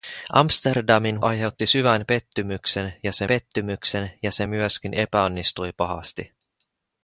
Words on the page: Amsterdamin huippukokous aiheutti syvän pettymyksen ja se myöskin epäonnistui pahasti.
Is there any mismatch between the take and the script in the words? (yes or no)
yes